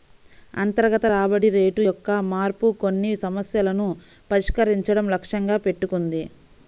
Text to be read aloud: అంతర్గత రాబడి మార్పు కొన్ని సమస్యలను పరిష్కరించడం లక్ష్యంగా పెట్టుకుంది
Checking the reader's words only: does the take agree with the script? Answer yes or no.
no